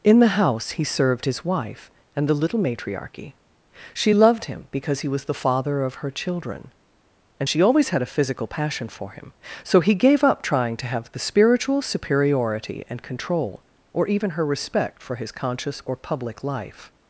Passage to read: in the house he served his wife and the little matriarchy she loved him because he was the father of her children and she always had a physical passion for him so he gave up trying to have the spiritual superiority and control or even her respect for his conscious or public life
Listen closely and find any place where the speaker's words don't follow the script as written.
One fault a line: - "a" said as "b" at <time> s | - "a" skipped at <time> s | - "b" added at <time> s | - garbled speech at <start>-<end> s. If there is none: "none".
none